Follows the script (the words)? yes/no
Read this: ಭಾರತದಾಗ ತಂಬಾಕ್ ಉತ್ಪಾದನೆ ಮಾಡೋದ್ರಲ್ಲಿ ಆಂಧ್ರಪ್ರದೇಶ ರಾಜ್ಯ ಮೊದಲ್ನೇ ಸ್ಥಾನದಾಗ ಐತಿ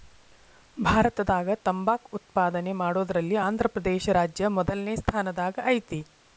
yes